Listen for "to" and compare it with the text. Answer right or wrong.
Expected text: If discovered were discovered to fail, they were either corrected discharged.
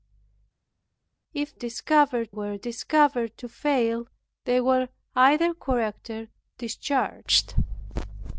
right